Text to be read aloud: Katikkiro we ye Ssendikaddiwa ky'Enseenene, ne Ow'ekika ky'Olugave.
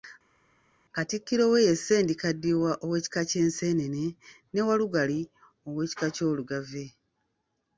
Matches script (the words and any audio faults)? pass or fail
fail